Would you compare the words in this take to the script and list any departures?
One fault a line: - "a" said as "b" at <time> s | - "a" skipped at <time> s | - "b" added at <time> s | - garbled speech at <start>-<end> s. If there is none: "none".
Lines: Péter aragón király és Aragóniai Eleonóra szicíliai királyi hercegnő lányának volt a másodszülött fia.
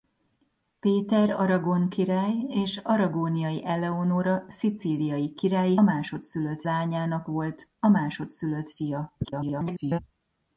- "hercegnő" said as "másodszülött" at 5.8 s
- garbled speech at 9.2-10.0 s